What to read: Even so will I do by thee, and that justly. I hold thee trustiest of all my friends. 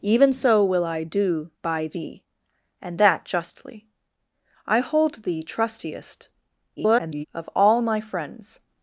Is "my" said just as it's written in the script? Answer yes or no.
yes